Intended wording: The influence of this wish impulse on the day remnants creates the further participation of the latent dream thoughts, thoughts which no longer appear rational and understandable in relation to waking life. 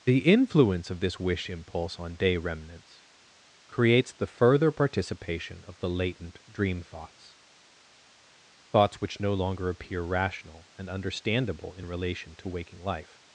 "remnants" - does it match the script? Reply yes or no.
yes